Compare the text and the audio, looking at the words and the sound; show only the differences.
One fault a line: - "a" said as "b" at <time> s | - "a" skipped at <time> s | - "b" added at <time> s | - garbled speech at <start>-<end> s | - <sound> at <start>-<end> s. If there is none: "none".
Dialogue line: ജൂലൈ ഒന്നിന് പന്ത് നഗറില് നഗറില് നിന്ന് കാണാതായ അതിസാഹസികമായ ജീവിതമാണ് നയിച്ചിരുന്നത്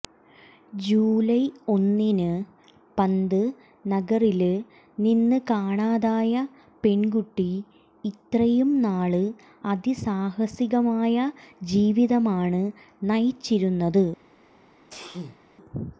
- "നഗറില്" skipped at 4.5 s
- "പെണ്കുട്ടി ഇത്രയും നാള്" added at 6.8 s
- sneeze at 14.9-15.4 s